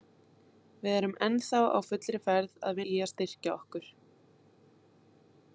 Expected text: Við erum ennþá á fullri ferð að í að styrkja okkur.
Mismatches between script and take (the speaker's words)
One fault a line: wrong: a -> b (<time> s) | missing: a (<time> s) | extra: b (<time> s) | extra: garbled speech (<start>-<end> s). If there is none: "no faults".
no faults